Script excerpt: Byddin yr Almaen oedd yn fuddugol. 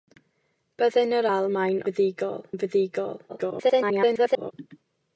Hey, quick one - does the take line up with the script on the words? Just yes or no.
no